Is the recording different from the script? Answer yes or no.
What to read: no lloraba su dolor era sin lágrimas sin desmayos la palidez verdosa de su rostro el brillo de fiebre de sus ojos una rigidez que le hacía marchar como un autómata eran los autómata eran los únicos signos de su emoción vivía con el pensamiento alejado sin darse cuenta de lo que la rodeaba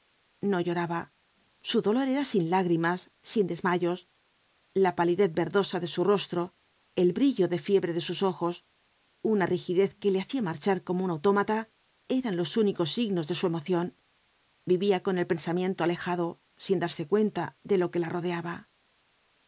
yes